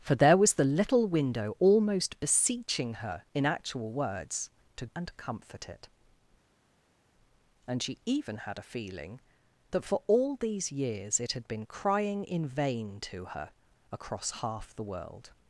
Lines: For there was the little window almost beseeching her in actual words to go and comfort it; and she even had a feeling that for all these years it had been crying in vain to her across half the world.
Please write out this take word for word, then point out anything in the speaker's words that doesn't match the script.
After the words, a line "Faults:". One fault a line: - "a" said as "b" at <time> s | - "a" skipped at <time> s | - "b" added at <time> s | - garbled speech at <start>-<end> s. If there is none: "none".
For there was the little window almost beseeching her in actual words to and comfort it; and she even had a feeling that for all these years it had been crying in vain to her across half the world.
Faults:
- "go" skipped at 4.8 s